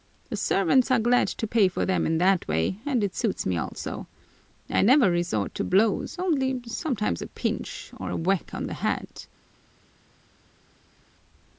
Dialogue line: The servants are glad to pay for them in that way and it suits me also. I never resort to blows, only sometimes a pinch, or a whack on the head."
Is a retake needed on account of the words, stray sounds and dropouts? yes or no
no